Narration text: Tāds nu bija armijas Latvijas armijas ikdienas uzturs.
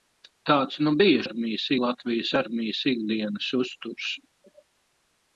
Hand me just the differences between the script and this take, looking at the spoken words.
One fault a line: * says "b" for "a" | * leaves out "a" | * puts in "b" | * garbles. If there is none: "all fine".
all fine